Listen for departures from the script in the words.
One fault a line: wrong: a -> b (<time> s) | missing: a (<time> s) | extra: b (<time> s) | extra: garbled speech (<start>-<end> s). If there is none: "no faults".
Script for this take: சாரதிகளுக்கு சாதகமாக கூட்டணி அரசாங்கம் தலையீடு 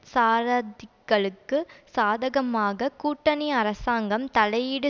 no faults